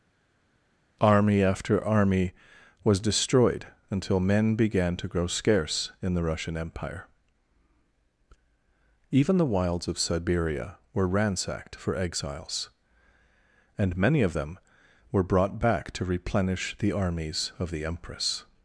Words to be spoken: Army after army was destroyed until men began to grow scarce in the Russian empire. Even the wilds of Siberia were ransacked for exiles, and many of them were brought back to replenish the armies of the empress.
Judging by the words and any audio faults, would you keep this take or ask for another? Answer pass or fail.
pass